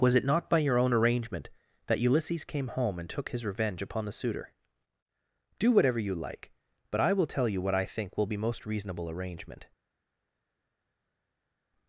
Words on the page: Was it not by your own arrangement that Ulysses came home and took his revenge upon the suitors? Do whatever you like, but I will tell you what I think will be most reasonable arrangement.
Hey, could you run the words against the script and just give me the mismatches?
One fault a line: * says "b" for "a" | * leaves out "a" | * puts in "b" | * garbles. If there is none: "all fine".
* says "suitor" for "suitors"